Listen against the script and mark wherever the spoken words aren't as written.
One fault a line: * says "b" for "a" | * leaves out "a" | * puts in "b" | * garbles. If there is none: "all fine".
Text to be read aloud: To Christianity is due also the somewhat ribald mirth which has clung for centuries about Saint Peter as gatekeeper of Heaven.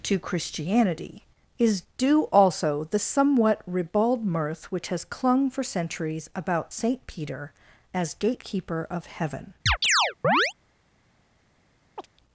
all fine